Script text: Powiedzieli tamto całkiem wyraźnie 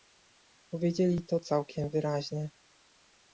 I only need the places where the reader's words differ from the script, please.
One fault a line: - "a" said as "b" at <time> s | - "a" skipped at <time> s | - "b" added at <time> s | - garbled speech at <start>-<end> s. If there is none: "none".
- "tamto" said as "to" at 1.2 s